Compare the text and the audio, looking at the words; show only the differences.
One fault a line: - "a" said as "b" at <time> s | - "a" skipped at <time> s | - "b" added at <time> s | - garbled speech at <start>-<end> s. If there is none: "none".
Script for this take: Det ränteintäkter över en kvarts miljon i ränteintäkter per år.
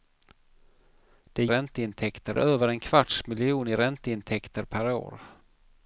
none